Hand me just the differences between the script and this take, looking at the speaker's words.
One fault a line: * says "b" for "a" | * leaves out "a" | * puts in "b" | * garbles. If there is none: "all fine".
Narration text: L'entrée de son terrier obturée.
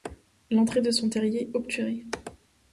all fine